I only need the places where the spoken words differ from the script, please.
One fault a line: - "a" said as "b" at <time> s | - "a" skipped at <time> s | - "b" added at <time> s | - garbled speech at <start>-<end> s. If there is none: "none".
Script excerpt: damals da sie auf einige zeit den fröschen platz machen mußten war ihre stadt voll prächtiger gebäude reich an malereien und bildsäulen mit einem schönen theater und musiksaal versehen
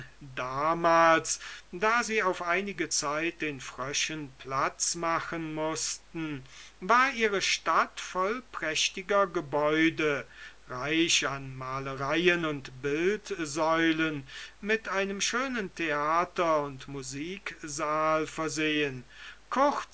none